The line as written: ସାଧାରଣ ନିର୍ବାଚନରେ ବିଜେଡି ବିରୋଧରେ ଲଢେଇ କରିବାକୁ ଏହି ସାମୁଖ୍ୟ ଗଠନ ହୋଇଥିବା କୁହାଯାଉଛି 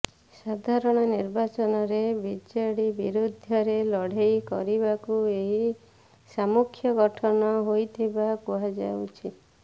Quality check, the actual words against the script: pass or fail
pass